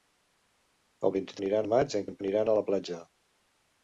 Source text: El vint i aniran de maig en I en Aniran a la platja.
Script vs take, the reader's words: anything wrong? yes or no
no